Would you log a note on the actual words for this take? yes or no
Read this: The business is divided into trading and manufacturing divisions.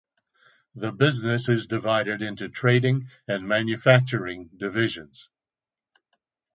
no